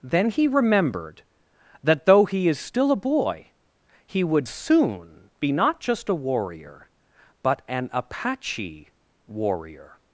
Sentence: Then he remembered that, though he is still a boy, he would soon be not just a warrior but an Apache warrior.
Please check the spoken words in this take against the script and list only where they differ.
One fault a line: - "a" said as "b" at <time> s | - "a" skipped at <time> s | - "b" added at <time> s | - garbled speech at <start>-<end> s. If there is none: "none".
none